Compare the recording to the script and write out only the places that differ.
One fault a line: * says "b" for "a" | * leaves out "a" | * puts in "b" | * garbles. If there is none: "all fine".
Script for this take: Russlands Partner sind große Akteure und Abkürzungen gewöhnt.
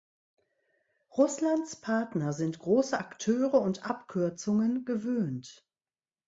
all fine